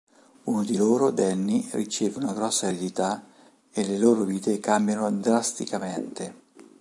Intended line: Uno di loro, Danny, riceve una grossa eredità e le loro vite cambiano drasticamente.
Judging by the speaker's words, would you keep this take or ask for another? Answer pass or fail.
pass